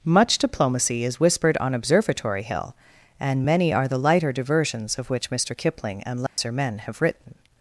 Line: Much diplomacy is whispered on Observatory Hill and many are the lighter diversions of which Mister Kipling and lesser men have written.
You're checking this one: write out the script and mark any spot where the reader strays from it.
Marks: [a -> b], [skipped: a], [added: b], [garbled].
Much diplomacy is whispered on Observatory Hill and many are the lighter diversions of which Mister Kipling and lesser men have written.